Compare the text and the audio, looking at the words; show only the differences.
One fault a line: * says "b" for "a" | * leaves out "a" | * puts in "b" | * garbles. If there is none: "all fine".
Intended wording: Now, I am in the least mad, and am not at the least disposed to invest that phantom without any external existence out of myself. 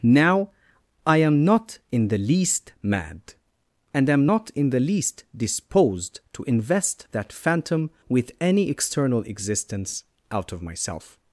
* puts in "not"
* says "in" for "at"
* says "with" for "without"